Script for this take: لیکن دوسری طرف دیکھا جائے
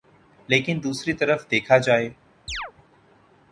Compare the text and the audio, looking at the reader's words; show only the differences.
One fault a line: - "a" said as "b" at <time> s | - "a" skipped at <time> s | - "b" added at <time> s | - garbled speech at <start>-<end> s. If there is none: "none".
none